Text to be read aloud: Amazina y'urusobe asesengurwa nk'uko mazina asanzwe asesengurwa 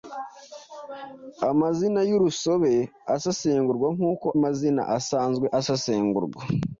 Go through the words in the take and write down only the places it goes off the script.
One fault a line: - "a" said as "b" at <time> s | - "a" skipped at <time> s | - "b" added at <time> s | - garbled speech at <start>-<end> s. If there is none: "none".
none